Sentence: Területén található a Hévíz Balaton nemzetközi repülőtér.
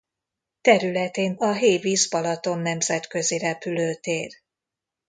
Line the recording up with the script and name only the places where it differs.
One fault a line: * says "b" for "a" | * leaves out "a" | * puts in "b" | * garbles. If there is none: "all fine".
* leaves out "található"